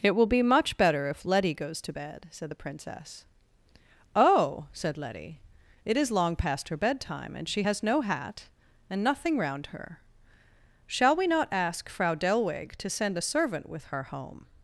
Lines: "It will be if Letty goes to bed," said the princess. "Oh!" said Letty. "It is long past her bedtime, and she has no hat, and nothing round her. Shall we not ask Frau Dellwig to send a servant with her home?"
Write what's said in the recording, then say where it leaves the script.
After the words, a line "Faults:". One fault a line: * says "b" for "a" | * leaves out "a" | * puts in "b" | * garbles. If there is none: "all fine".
"It will be much better if Letty goes to bed," said the princess. "Oh!" said Letty. "It is long past her bedtime, and she has no hat, and nothing round her. Shall we not ask Frau Dellwig to send a servant with her home?"
Faults:
* puts in "much better"